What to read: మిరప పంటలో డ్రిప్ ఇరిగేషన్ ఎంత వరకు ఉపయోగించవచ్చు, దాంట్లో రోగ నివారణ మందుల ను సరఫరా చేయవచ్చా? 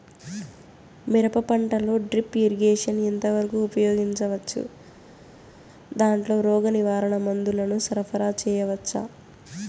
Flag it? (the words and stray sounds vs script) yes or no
no